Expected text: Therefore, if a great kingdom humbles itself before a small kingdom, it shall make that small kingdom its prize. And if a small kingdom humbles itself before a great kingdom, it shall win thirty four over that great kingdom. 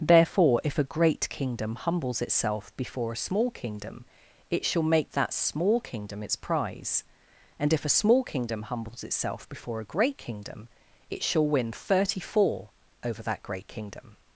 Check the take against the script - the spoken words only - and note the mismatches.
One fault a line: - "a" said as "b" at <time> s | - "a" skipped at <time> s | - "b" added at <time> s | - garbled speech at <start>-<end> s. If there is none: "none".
none